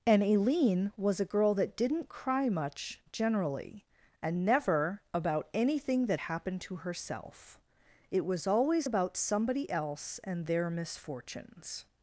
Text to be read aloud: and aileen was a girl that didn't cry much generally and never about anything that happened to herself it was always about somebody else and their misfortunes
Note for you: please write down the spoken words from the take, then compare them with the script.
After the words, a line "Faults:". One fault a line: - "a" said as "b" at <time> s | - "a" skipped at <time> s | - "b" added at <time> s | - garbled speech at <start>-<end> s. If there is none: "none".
and aileen was a girl that didn't cry much generally and never about anything that happened to herself it was always about somebody else and their misfortunes
Faults:
none